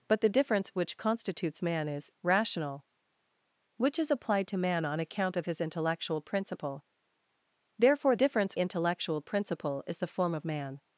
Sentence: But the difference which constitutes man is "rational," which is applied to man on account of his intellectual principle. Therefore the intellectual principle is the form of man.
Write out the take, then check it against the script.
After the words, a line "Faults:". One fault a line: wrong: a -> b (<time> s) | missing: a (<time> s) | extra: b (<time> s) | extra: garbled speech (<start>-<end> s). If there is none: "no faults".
But the difference which constitutes man is "rational," which is applied to man on account of his intellectual principle. Therefore difference intellectual principle is the form of man.
Faults:
wrong: the -> difference (8.1 s)